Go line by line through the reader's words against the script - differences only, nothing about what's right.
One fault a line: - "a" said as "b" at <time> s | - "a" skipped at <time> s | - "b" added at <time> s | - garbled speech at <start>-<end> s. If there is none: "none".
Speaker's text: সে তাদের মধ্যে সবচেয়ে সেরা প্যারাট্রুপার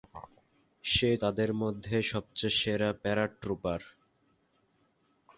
none